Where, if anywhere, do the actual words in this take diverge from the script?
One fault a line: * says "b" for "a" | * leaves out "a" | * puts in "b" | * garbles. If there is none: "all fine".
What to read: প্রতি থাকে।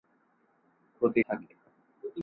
all fine